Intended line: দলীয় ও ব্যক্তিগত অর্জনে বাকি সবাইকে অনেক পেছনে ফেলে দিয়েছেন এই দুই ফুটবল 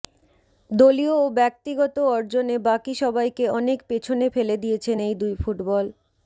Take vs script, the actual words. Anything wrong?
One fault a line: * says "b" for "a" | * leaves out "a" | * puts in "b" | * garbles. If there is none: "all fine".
all fine